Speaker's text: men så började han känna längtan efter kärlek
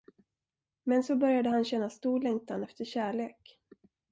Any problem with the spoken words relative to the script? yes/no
yes